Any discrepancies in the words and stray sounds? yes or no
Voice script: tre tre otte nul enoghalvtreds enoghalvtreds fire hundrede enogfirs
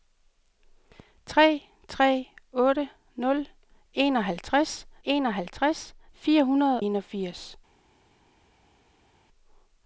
no